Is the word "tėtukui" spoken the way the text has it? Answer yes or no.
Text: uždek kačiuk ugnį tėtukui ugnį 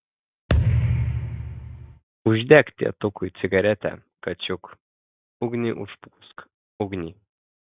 no